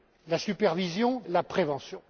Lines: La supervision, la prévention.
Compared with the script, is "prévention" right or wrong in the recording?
right